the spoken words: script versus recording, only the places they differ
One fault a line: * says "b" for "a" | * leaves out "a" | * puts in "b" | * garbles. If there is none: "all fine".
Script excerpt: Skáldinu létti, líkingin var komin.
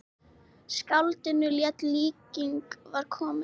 all fine